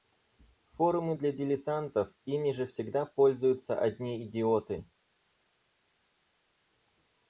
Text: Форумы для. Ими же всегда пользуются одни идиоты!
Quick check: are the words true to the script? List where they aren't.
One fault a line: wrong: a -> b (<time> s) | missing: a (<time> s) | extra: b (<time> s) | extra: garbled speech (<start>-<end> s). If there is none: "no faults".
extra: дилетантов (1.3 s)